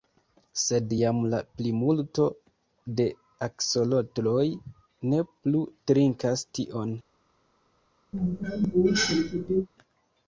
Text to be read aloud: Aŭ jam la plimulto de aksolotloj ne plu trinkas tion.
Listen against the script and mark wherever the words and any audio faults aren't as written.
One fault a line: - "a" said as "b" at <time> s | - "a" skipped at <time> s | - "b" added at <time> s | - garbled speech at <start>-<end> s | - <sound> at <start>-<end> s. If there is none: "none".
- "Aŭ" said as "Sed" at 0.6 s
- cough at 8.1-9.7 s